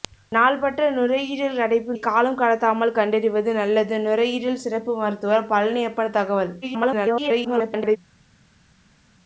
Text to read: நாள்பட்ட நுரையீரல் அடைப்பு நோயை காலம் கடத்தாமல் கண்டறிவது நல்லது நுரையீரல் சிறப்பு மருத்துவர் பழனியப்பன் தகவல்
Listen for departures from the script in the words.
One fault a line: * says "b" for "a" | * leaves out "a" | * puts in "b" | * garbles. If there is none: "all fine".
* leaves out "நோயை"
* garbles